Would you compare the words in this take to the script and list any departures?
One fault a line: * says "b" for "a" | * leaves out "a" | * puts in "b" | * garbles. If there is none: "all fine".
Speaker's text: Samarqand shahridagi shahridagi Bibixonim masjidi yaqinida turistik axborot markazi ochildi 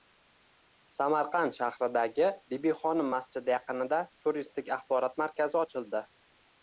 * leaves out "shahridagi"